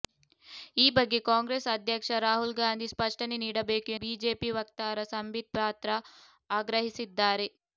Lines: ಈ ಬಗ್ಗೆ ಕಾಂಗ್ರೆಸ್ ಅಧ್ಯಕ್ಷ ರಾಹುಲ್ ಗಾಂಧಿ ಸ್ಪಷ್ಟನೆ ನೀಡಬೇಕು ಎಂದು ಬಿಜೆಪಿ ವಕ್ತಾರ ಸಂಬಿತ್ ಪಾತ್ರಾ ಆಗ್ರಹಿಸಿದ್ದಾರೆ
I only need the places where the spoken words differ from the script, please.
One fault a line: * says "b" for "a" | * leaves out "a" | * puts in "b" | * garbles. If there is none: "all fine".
* leaves out "ಎಂದು"